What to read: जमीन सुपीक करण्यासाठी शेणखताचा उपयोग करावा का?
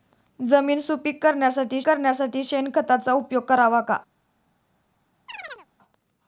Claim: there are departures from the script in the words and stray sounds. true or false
true